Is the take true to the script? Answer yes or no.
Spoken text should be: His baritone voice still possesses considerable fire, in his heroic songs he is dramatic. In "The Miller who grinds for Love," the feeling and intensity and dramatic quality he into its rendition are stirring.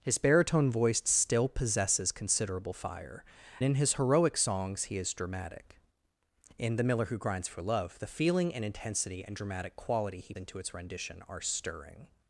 yes